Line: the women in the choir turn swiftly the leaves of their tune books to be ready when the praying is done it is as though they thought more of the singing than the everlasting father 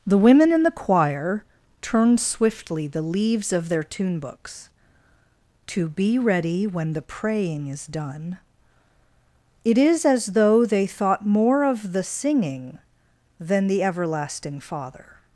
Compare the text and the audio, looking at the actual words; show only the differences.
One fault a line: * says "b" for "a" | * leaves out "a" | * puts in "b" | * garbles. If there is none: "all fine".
all fine